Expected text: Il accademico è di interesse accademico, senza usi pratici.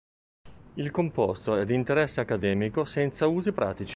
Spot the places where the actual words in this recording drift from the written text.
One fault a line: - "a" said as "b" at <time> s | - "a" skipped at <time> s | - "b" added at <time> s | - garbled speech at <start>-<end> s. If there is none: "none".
- "accademico" said as "composto" at 0.9 s